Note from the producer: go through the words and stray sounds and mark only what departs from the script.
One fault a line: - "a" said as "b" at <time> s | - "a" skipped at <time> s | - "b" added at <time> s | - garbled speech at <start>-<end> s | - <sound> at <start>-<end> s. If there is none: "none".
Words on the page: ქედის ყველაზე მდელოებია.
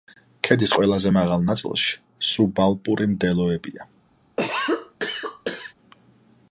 - "მაღალ ნაწილში სუბალპური" added at 1.2 s
- cough at 4.4-5.7 s